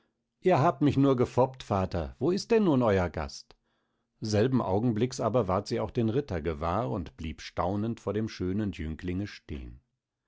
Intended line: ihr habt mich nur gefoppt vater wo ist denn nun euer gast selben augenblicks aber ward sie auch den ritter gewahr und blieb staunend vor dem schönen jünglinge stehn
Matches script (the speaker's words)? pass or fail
pass